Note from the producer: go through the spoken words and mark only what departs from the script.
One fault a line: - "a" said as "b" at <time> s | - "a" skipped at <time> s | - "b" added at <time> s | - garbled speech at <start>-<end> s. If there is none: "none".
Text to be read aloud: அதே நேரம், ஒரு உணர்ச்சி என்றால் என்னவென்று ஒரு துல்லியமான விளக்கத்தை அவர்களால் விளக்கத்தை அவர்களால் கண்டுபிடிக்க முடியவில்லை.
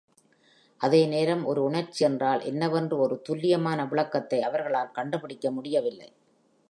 - "விளக்கத்தை அவர்களால்" skipped at 4.9 s